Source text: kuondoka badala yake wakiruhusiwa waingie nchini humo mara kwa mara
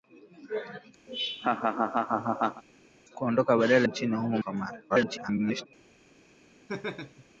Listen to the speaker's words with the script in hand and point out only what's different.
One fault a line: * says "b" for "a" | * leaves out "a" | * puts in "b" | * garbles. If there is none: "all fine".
* leaves out "yake wakiruhusiwa waingie"
* leaves out "mara"
* garbles